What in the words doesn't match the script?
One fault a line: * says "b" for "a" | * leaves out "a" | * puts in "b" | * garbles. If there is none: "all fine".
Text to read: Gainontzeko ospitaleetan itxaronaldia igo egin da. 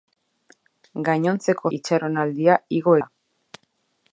* leaves out "ospitaleetan"
* leaves out "egin"